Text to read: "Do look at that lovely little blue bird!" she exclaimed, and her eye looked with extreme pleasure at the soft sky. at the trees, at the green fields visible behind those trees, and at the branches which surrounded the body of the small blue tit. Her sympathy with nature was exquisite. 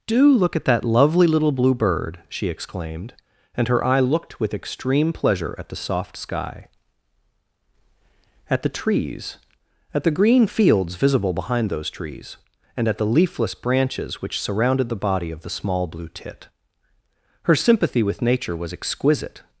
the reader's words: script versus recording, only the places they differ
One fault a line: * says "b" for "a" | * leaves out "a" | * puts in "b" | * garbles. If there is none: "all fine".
* puts in "leafless"